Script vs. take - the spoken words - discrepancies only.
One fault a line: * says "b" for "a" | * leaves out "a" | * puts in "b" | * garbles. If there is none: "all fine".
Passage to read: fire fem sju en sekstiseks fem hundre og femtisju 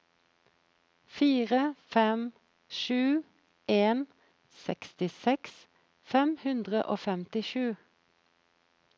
all fine